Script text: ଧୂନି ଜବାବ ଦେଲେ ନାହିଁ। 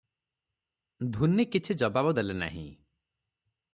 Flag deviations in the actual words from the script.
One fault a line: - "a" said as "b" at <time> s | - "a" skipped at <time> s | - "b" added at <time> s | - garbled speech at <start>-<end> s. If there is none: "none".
- "କିଛି" added at 1.4 s